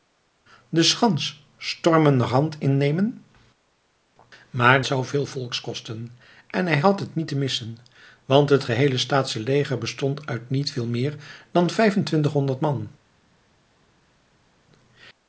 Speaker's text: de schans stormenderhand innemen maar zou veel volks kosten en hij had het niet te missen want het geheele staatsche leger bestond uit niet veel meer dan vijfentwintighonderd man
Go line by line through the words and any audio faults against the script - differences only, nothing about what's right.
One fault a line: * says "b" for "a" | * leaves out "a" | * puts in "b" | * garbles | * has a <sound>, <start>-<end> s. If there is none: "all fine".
all fine